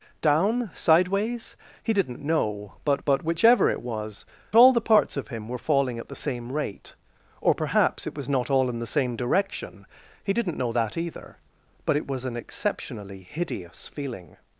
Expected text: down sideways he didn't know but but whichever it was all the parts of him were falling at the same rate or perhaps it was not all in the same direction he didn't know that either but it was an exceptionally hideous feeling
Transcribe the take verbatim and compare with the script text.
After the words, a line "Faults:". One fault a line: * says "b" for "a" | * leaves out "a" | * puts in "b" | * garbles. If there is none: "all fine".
down sideways he didn't know but but whichever it was all the parts of him were falling at the same rate or perhaps it was not all in the same direction he didn't know that either but it was an exceptionally hideous feeling
Faults:
all fine